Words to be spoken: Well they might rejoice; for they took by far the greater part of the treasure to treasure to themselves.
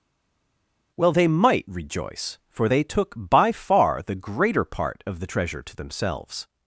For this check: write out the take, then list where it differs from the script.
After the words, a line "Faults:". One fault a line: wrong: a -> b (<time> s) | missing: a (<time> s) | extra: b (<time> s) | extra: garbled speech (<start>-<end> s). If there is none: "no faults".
Well they might rejoice; for they took by far the greater part of the treasure to themselves.
Faults:
missing: treasure to (5.8 s)